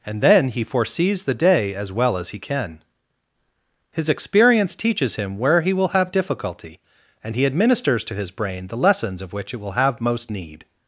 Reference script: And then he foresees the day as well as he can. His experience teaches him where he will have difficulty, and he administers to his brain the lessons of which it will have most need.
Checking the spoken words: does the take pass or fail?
pass